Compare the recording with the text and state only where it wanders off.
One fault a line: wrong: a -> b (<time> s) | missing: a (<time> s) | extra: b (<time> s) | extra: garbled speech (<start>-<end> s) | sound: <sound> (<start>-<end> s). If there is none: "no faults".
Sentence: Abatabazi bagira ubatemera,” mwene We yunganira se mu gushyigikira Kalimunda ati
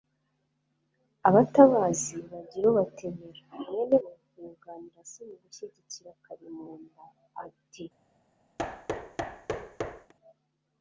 sound: thud (8.6-10.1 s)